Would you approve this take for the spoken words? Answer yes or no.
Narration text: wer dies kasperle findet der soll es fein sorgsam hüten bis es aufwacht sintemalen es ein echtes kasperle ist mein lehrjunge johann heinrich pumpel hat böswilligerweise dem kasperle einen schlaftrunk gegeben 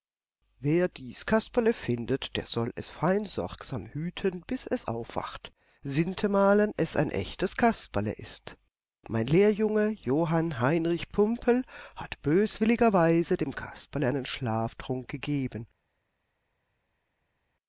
yes